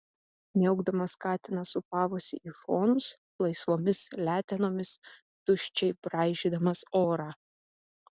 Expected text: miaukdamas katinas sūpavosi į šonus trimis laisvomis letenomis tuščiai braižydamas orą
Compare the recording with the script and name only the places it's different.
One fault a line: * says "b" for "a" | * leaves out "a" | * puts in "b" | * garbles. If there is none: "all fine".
* leaves out "trimis"